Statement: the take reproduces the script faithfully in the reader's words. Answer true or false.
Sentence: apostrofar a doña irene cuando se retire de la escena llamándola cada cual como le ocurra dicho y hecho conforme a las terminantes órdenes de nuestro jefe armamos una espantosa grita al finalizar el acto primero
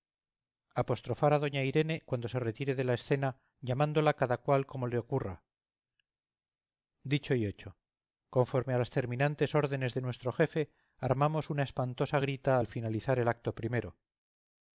true